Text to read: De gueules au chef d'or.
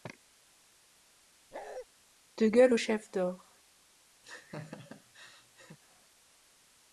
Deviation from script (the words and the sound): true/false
true